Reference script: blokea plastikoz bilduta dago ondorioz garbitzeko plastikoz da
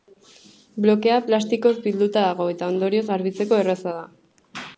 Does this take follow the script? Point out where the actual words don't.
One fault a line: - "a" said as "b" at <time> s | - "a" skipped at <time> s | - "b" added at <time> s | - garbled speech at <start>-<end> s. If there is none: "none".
- "eta" added at 2.5 s
- "plastikoz" said as "erraza" at 3.6 s